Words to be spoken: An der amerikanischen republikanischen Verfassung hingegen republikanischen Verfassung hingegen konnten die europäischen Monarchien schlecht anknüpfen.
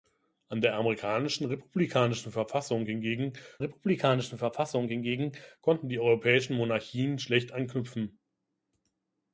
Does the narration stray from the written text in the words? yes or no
no